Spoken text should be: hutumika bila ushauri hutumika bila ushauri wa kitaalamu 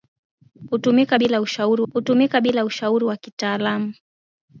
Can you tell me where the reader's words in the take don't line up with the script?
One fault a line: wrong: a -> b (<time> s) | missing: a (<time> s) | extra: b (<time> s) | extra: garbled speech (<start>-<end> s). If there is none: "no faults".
no faults